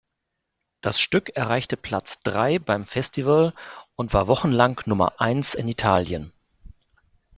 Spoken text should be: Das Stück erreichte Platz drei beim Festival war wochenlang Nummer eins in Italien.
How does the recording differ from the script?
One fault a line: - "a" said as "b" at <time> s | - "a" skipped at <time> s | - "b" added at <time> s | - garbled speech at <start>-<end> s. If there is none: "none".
- "und" added at 4.0 s